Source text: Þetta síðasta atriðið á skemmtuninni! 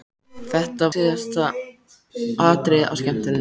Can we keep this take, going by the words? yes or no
yes